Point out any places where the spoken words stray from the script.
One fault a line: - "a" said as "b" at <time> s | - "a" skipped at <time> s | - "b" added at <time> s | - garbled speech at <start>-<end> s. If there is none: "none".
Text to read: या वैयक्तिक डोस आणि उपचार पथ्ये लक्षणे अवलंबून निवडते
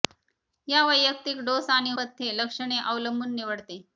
- "उपचार" skipped at 1.9 s